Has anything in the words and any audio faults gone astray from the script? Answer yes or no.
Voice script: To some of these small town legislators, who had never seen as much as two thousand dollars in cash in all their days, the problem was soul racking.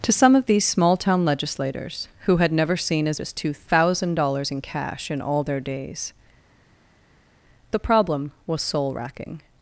yes